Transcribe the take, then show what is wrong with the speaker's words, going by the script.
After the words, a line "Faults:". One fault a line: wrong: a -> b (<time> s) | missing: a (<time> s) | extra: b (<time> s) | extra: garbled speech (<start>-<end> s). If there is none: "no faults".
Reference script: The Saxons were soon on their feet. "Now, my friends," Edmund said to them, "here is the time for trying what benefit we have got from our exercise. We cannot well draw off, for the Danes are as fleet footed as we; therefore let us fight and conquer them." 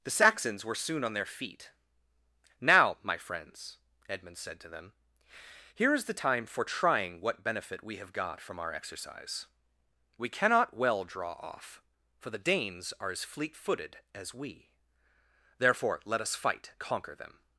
The Saxons were soon on their feet. "Now, my friends," Edmund said to them, "here is the time for trying what benefit we have got from our exercise. We cannot well draw off, for the Danes are as fleet footed as we; therefore let us fight conquer them."
Faults:
missing: and (16.7 s)